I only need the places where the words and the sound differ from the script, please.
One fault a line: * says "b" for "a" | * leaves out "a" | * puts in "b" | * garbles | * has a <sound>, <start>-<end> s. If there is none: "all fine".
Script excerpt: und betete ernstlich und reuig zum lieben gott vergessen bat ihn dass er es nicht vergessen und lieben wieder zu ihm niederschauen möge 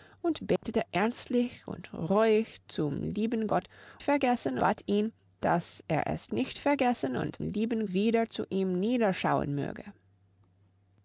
* has a dropout, 0.6-0.6 s